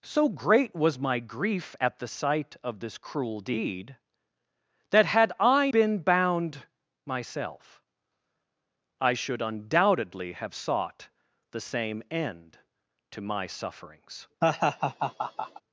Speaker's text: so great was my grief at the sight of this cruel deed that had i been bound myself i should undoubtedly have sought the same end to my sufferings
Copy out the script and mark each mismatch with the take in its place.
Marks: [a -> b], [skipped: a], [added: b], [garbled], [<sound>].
so great was my grief at the sight of this cruel deed that had i been bound myself i should undoubtedly have sought the same end to my sufferings [laugh]